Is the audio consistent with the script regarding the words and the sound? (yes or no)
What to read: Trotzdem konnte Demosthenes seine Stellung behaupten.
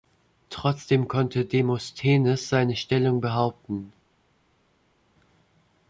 yes